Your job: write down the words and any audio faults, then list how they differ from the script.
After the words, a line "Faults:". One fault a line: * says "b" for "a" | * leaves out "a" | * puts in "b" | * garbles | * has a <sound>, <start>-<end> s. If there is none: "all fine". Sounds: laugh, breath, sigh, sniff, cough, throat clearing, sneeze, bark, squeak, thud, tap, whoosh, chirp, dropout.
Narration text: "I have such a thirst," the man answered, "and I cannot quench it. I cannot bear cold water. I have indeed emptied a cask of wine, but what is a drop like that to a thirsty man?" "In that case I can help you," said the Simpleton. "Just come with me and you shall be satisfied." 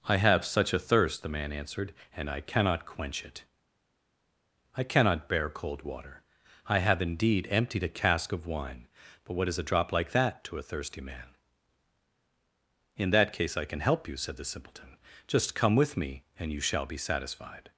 "I have such a thirst," the man answered, "and I cannot quench it. I cannot bear cold water. I have indeed emptied a cask of wine, but what is a drop like that to a thirsty man?" "In that case I can help you," said the Simpleton. "Just come with me and you shall be satisfied."
Faults:
all fine